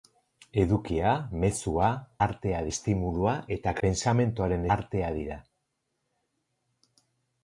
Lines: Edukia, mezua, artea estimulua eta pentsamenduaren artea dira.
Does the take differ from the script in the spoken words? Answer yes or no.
no